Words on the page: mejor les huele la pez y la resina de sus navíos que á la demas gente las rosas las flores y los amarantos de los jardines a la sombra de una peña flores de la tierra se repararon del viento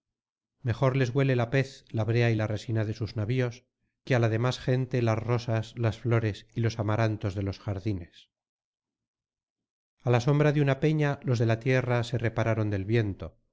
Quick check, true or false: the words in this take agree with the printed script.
false